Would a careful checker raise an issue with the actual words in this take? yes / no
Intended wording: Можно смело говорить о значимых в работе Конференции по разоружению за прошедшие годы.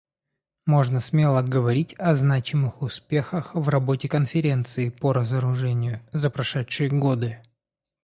yes